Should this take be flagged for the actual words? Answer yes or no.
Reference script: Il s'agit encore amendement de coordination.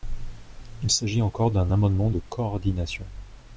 yes